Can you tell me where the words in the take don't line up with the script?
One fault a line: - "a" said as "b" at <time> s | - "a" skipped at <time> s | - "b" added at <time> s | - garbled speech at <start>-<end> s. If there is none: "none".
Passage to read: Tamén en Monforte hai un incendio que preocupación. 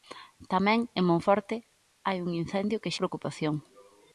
none